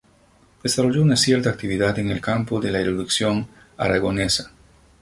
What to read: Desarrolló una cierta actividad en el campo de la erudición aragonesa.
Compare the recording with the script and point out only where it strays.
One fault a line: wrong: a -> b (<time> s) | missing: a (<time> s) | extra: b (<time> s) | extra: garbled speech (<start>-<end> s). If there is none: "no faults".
no faults